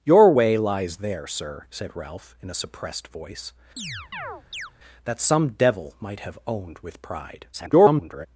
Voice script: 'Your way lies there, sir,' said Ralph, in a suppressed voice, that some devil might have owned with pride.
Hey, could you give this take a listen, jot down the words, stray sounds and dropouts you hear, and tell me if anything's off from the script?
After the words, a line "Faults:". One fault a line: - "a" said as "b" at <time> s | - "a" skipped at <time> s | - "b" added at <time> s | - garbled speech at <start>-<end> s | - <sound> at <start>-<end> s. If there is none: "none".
'Your way lies there, sir,' said Ralph, in a suppressed voice, that some devil might have owned with pride. [garbled]
Faults:
- chirp at 3.8-4.7 s
- garbled speech at 7.5-8.3 s